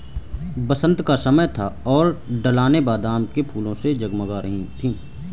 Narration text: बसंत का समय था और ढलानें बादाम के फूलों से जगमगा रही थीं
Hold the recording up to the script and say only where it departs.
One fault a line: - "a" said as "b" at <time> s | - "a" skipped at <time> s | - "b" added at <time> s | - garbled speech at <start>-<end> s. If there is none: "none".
none